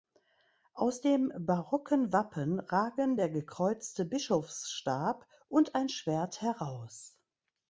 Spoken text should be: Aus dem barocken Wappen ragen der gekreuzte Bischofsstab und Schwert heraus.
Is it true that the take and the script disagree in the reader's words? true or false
true